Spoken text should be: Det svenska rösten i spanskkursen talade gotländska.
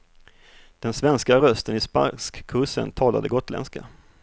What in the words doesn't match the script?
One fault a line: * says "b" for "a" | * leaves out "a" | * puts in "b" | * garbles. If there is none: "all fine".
* says "Den" for "Det"